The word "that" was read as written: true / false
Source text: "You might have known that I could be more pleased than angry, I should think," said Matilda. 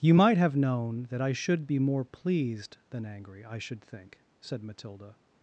true